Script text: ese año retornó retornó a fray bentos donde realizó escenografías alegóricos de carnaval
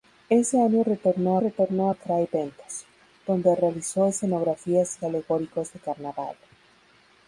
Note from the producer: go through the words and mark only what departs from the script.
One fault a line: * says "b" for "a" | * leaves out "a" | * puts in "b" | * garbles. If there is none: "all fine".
all fine